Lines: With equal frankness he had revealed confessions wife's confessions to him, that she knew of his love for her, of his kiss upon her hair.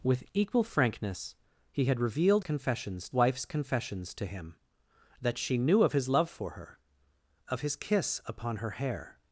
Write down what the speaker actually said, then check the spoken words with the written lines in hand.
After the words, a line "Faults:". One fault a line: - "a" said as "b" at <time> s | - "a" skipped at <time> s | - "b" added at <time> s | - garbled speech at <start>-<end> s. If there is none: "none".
With equal frankness he had revealed confessions wife's confessions to him, that she knew of his love for her, of his kiss upon her hair.
Faults:
none